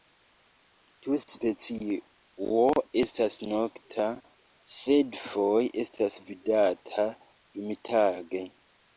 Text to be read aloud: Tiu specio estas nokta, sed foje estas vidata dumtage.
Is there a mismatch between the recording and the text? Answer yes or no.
no